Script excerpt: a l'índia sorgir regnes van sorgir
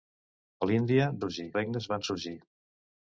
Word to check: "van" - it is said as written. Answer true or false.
true